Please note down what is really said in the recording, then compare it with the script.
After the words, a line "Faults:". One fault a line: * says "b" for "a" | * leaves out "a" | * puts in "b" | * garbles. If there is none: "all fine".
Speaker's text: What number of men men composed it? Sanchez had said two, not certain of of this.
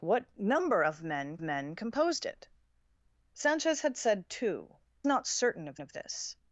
What number of men men composed it? Sanchez had said two, not certain of of this.
Faults:
all fine